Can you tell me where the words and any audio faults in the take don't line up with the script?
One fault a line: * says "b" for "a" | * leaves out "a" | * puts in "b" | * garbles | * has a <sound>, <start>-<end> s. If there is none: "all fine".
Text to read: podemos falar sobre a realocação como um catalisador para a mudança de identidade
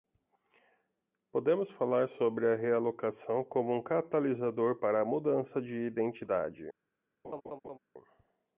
* has a laugh, 7.2-7.8 s